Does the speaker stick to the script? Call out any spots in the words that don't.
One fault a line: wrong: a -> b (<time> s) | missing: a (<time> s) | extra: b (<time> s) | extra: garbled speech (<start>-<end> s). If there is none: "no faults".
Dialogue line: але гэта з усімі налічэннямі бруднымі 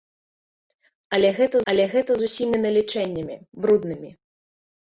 extra: але гэта (1.7 s)